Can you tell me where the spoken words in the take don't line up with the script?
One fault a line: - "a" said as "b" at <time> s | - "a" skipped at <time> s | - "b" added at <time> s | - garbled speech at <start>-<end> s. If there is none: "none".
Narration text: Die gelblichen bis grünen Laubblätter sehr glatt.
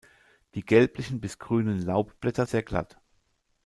none